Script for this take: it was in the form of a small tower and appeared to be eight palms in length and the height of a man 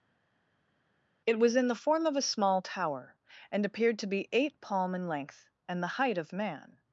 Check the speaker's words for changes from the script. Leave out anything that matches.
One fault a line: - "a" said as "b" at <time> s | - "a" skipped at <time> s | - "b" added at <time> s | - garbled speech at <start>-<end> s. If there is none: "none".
- "palms" said as "palm" at 4.6 s
- "a" skipped at 6.3 s